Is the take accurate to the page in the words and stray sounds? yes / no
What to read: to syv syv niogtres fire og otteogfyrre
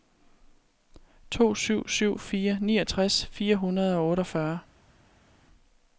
no